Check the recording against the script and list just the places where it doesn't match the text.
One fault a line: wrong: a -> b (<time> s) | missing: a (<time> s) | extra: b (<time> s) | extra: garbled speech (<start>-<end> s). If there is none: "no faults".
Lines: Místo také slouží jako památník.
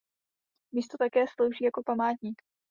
no faults